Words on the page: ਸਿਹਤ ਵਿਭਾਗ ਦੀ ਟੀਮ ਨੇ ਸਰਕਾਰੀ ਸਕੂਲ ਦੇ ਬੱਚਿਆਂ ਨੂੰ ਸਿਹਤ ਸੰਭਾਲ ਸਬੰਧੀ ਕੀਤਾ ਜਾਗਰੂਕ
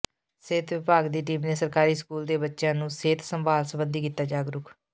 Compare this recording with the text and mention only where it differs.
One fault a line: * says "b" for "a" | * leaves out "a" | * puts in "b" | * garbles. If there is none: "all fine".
all fine